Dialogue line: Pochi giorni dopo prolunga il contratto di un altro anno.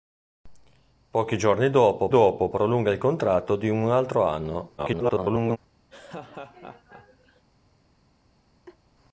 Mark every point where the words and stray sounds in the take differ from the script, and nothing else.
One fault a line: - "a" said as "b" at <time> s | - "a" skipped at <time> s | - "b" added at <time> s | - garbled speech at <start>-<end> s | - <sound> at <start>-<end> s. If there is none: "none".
- "dopo" added at 2.1 s
- garbled speech at 4.8-5.6 s
- laugh at 5.9-7.4 s
- laugh at 8.7-8.8 s